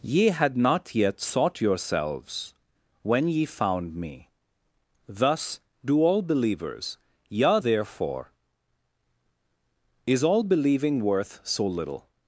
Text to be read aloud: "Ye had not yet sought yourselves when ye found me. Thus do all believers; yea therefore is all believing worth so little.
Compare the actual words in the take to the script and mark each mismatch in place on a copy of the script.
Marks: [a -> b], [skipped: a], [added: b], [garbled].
"Ye had not yet sought yourselves when ye found me. Thus do all believers; yea therefore is all believing worth so little.